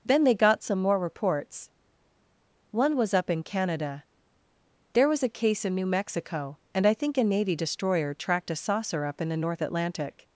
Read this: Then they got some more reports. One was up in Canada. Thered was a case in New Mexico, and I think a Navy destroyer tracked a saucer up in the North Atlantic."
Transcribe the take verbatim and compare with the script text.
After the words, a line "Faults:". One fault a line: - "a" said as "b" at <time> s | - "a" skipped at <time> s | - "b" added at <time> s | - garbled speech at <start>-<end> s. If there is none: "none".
Then they got some more reports. One was up in Canada. There was a case in New Mexico, and I think a Navy destroyer tracked a saucer up in the North Atlantic."
Faults:
- "Thered" said as "There" at 4.9 s